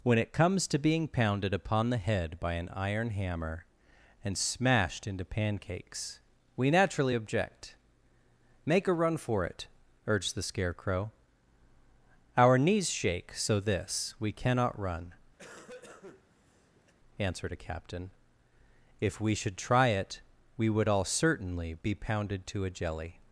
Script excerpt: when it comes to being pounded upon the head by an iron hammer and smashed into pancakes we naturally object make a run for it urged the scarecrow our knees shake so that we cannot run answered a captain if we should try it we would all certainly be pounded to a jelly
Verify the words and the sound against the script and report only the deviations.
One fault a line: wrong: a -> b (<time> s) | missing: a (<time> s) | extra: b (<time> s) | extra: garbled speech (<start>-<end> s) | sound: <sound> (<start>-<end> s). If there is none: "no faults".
wrong: that -> this (13.6 s)
sound: cough (15.4-16.9 s)